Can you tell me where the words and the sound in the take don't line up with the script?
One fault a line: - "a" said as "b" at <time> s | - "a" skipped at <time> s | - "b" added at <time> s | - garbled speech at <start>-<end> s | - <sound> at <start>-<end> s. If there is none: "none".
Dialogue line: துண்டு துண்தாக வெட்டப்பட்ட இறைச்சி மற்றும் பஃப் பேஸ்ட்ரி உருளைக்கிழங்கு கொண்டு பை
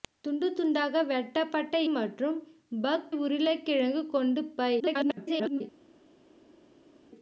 - "இறைச்சி" skipped at 1.8 s
- "பேஸ்ட்ரி" skipped at 3.1 s
- garbled speech at 4.8-5.6 s